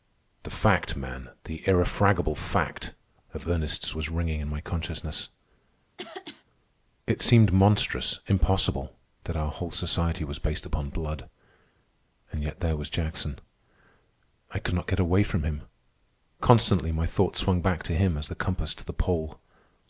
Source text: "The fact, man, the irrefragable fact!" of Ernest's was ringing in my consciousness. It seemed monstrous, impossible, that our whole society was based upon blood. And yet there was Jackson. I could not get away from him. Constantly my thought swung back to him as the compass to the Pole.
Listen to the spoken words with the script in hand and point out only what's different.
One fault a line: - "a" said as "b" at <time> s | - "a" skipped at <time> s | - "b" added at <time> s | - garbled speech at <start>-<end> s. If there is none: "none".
none